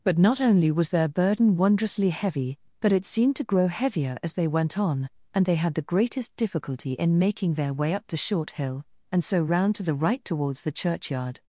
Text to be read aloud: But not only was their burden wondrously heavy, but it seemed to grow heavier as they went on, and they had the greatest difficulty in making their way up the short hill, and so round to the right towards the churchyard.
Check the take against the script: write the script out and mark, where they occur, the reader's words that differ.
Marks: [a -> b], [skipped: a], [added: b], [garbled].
But not only was their burden wondrously heavy, but it seemed to grow heavier as they went on, and they had the greatest difficulty in making their way up the short hill, and so round to the right towards the churchyard.